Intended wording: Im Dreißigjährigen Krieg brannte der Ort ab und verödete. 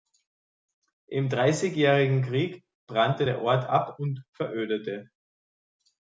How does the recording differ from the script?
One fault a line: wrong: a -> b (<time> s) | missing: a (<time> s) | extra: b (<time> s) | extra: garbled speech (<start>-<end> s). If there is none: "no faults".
no faults